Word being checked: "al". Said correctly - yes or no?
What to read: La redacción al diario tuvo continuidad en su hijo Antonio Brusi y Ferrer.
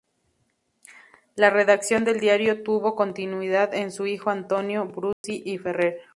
no